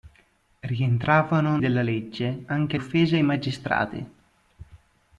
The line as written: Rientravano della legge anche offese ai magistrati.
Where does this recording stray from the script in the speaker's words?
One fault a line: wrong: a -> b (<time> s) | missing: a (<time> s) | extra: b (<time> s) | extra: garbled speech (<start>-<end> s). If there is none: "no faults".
no faults